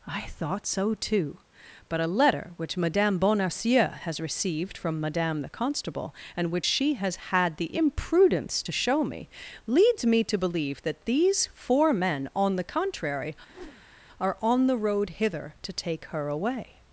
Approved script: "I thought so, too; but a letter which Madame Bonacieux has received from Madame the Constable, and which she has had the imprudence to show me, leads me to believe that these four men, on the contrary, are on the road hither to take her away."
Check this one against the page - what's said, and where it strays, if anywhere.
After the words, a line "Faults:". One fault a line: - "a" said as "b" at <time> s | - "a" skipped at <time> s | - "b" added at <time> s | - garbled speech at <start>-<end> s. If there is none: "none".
"I thought so, too; but a letter which Madame Bonacieux has received from Madame the Constable, and which she has had the imprudence to show me, leads me to believe that these four men, on the contrary, are on the road hither to take her away."
Faults:
none